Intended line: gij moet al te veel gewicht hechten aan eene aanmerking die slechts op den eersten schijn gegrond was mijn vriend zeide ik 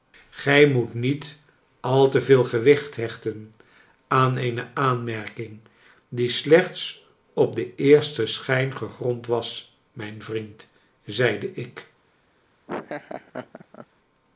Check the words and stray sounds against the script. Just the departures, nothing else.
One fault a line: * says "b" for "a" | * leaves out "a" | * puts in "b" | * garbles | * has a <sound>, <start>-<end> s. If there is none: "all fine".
* puts in "niet"
* has a laugh, 12.7-13.9 s